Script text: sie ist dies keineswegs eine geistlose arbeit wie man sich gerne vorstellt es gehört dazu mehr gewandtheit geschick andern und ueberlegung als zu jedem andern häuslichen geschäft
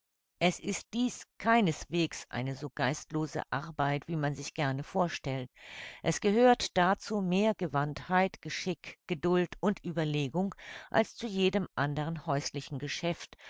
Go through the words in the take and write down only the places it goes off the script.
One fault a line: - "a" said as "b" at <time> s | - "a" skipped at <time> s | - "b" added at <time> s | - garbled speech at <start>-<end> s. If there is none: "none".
- "sie" said as "es" at 0.4 s
- "so" added at 2.5 s
- "andern" said as "geduld" at 9.1 s